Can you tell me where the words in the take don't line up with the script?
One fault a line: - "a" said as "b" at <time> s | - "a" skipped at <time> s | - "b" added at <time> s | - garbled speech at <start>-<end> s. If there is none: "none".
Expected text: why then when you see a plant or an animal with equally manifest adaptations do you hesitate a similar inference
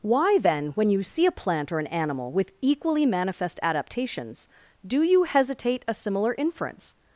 none